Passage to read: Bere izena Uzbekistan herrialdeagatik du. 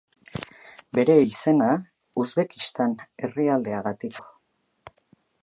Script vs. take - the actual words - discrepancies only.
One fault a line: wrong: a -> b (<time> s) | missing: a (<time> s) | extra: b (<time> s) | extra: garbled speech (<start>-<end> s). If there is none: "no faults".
no faults